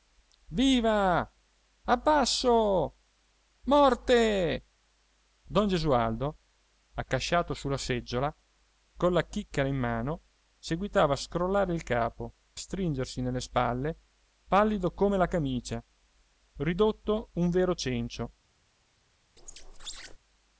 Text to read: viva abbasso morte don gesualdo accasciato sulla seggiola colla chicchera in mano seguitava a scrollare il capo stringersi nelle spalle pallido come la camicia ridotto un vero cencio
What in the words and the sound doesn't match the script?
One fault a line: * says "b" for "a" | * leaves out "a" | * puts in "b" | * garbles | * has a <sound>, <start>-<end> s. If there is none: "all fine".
* has a squeak, 19.4-20.2 s